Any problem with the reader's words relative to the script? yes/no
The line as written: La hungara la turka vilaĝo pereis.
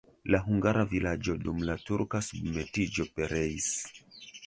yes